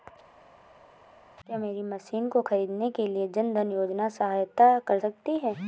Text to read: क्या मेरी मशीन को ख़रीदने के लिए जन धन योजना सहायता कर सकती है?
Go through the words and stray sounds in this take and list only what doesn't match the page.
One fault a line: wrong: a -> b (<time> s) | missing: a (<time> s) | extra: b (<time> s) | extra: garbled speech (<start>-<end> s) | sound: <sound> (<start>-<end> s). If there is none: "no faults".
no faults